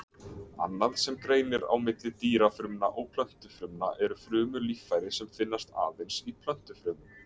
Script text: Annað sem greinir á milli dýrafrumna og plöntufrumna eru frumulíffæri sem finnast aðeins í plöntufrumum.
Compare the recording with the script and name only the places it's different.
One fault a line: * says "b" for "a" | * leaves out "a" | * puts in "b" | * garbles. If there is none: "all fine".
all fine